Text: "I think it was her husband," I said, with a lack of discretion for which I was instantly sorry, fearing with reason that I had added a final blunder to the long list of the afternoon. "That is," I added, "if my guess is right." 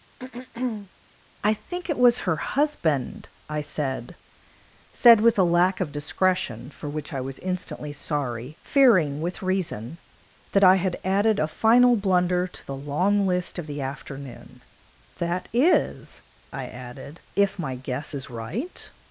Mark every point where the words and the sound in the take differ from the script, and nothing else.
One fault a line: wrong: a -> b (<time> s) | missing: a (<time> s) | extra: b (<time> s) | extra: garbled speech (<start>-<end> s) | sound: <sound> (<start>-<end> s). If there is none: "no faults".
sound: throat clearing (0.2-0.9 s)
extra: said (4.9 s)